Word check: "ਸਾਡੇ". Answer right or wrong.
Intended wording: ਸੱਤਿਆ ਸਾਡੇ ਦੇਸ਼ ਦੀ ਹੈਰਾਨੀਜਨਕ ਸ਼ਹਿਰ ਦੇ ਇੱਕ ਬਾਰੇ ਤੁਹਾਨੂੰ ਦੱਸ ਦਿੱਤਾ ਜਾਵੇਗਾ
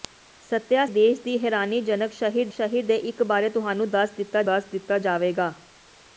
wrong